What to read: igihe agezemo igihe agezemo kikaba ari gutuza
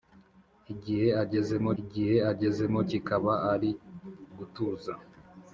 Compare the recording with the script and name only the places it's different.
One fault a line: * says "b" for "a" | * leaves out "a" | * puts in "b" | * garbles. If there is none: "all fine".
all fine